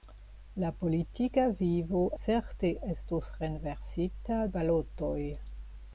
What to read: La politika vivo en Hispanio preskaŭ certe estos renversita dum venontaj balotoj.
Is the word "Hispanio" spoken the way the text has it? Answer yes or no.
no